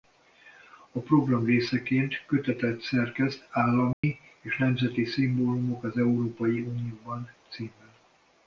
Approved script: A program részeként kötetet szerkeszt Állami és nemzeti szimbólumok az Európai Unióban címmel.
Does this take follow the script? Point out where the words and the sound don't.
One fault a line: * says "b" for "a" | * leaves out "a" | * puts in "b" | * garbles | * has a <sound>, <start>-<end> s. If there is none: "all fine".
* has a dropout, 3.9-4.0 s